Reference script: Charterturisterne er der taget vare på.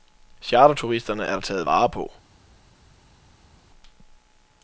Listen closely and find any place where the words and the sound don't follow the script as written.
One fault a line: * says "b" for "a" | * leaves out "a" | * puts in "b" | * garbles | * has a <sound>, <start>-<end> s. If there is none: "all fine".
all fine